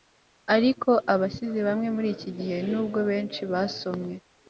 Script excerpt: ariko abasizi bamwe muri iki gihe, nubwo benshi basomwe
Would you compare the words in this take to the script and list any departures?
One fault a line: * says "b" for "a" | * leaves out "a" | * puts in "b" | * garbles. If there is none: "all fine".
all fine